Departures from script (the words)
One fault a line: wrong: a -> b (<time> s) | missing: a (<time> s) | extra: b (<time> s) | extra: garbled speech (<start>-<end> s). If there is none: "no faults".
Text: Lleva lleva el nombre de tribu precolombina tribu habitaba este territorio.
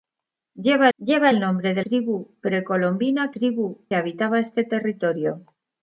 no faults